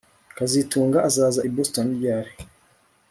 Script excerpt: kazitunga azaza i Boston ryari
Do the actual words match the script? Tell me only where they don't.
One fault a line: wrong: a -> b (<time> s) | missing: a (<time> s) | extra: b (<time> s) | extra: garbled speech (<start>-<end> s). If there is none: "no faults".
no faults